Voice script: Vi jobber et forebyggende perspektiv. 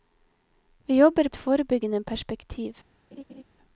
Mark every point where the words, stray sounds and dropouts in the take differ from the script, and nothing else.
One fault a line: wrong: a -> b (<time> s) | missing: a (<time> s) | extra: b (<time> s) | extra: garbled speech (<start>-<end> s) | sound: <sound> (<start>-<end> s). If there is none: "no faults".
sound: laugh (3.1-3.4 s)